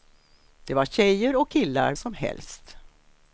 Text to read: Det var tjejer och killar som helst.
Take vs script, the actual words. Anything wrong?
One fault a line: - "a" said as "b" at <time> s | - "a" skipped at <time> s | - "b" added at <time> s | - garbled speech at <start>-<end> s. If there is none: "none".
none